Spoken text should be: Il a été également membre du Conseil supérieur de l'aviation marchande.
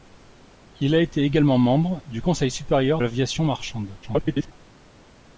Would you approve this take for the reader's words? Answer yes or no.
no